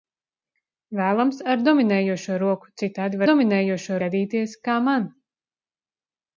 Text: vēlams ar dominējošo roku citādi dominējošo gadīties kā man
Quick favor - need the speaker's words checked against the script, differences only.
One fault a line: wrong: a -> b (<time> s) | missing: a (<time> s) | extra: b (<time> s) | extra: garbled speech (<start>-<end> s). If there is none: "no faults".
no faults